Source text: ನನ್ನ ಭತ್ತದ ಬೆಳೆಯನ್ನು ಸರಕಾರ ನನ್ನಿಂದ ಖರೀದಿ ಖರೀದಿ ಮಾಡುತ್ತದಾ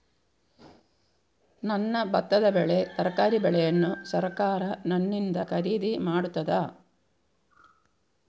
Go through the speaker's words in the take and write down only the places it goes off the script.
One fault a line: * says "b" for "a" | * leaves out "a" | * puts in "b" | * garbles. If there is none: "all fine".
* puts in "ಬೆಳೆ ತರಕಾರಿ"
* leaves out "ಖರೀದಿ"